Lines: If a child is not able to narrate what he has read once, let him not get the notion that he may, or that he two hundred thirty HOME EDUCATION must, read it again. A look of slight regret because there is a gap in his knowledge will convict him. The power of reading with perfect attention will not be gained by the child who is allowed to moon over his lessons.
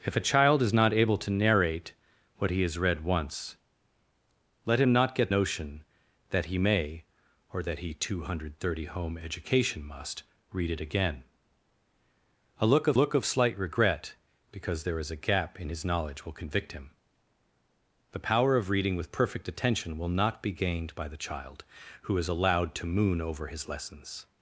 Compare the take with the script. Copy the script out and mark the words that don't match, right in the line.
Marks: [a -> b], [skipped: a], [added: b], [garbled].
If a child is not able to narrate what he has read once, let him not get [skipped: the] notion that he may, or that he two hundred thirty HOME EDUCATION must, read it again. A look of [added: look of] slight regret because there is a gap in his knowledge will convict him. The power of reading with perfect attention will not be gained by the child who is allowed to moon over his lessons.